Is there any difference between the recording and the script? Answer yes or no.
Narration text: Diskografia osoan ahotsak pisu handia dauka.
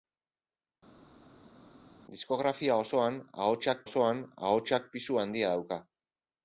yes